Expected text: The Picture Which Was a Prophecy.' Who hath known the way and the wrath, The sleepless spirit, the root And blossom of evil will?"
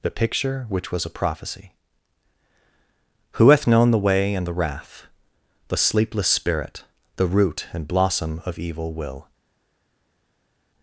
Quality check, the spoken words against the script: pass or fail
pass